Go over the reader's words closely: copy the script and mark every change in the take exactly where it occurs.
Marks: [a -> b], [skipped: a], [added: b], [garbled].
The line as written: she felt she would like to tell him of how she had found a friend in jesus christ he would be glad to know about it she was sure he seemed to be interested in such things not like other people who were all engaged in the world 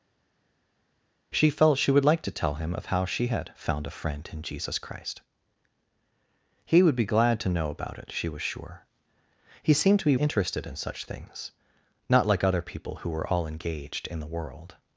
she felt she would like to tell him of how she had found a friend in jesus christ he would be glad to know about it she was sure he seemed to be interested in such things not like other people who were all engaged in the world